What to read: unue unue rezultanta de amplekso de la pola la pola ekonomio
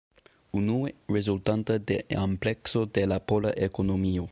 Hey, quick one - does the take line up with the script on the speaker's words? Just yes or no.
no